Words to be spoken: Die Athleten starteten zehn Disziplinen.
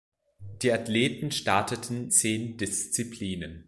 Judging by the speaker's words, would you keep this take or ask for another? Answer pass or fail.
pass